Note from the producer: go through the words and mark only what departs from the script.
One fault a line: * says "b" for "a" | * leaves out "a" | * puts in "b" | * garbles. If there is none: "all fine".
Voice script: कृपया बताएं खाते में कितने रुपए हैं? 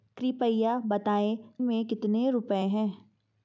* leaves out "खाते"